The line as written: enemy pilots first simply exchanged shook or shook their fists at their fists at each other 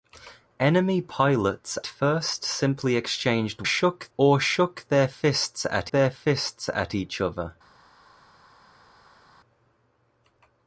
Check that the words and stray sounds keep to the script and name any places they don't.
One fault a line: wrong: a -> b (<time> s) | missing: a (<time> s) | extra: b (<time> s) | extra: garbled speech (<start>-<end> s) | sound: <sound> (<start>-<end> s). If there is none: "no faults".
no faults